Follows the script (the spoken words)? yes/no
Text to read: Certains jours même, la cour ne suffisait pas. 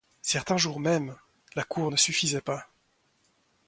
yes